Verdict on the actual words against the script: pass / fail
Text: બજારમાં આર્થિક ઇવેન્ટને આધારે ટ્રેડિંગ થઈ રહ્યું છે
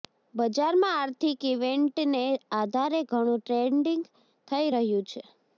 fail